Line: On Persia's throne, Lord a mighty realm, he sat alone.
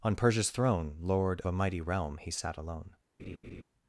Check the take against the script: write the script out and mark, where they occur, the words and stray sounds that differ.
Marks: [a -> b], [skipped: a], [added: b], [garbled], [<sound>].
On Persia's throne, Lord a mighty realm, he sat alone. [laugh]